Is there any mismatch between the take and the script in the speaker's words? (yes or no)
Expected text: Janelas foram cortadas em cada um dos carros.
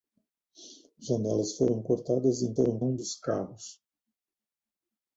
yes